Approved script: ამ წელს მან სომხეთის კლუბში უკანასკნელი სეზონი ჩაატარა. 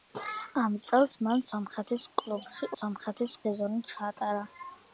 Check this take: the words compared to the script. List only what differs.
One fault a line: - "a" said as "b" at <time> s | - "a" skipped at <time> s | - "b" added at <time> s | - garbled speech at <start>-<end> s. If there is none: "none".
- "უკანასკნელი" said as "სომხეთის" at 2.8 s